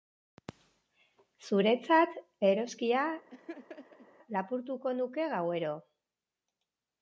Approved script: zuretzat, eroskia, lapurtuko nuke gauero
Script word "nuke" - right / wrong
right